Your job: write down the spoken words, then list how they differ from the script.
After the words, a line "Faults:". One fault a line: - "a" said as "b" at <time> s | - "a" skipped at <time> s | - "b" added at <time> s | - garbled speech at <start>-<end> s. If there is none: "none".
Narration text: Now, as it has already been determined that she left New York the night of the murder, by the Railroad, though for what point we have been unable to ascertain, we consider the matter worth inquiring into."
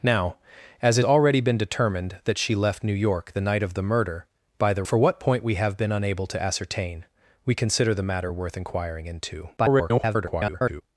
Now, as it already been determined that she left New York the night of the murder, by the For what point we have been unable to ascertain, we consider the matter worth inquiring into." [garbled]
Faults:
- "has" skipped at 1.1 s
- "Railroad though" skipped at 4.8 s
- garbled speech at 9.6-10.8 s